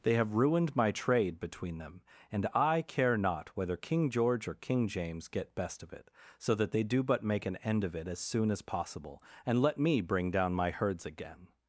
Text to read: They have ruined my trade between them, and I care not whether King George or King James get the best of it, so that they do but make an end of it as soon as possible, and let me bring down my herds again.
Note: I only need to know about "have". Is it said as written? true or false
true